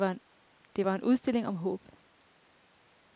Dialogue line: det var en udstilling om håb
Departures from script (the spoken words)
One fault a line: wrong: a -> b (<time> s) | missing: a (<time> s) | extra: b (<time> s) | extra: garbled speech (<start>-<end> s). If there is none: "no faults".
no faults